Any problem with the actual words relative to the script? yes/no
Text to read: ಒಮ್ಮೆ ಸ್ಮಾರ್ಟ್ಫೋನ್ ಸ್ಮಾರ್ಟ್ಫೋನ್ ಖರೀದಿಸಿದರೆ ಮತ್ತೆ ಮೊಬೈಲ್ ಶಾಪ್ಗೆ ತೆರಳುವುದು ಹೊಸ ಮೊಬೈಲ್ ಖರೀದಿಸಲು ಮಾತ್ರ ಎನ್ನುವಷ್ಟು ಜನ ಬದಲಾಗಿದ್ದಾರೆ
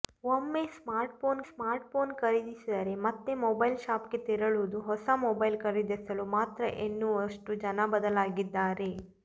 no